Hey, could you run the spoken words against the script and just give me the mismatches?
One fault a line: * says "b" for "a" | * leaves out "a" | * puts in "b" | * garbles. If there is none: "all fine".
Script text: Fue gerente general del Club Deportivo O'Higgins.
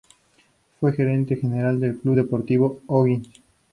all fine